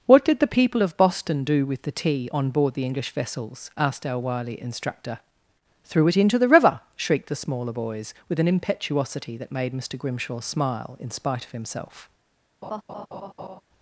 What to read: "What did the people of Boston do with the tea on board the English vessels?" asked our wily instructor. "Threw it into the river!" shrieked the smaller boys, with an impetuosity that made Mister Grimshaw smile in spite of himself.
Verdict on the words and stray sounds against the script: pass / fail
fail